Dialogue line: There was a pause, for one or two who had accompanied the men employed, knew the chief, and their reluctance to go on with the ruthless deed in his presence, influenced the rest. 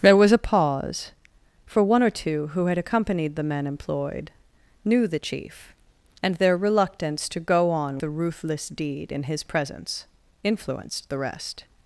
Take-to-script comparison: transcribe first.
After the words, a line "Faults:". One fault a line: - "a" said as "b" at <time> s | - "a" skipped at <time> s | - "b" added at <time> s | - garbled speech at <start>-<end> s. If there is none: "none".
There was a pause, for one or two who had accompanied the men employed, knew the chief, and their reluctance to go on the ruthless deed in his presence, influenced the rest.
Faults:
- "with" skipped at 8.0 s